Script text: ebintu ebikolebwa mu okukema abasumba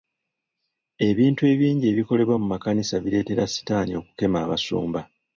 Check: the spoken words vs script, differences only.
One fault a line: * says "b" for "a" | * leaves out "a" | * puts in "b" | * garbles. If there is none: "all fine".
* puts in "ebingi"
* puts in "makanisa bireetera sitaani"